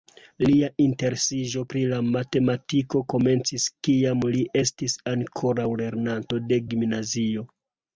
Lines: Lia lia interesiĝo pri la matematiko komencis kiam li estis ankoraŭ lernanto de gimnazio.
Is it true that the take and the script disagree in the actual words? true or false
true